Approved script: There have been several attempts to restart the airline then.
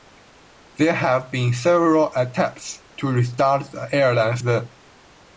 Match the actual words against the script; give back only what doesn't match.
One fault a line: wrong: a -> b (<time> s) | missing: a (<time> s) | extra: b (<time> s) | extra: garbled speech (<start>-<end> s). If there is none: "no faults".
no faults